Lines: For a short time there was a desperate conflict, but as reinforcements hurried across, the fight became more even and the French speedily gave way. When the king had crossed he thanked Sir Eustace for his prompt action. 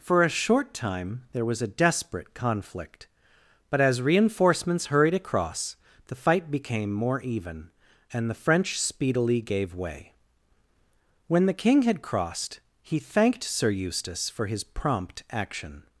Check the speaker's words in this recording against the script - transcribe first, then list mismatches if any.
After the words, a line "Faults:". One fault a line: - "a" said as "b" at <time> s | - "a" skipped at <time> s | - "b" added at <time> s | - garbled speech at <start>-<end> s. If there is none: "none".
For a short time there was a desperate conflict, but as reinforcements hurried across, the fight became more even and the French speedily gave way. When the king had crossed he thanked Sir Eustace for his prompt action.
Faults:
none